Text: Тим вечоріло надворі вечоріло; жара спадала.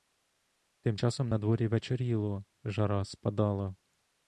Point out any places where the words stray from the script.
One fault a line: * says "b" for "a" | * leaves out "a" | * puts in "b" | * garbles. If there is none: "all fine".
* says "часом" for "вечоріло"